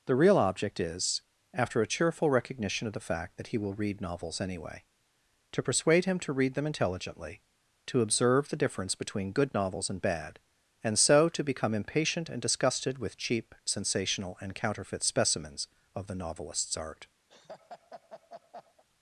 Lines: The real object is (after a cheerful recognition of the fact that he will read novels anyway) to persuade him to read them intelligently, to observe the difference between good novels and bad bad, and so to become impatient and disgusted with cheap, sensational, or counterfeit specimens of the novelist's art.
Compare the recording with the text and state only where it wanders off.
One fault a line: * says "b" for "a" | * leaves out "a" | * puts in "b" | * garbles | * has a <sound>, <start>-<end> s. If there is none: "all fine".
* leaves out "bad"
* says "and" for "or"
* has a laugh, 17.3-18.8 s